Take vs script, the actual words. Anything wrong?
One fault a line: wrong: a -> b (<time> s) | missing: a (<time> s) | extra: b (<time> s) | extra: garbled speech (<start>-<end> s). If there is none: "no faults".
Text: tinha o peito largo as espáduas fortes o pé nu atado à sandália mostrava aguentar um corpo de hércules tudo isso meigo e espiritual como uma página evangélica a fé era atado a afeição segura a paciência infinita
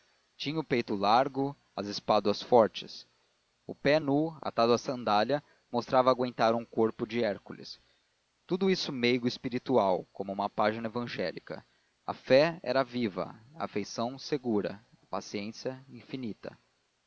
wrong: atado -> viva (12.8 s)